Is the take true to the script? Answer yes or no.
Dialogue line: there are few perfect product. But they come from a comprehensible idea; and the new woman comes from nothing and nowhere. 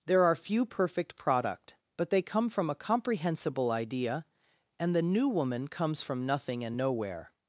yes